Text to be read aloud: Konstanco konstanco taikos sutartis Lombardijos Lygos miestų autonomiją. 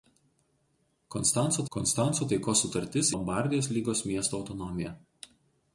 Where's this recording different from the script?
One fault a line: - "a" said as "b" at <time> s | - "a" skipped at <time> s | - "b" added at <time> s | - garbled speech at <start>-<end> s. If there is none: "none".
none